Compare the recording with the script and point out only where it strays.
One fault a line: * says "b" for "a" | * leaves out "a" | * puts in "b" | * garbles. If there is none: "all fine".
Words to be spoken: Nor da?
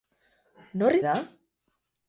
all fine